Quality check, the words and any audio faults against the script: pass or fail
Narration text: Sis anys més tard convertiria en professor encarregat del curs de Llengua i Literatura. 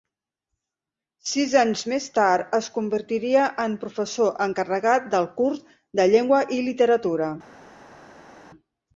fail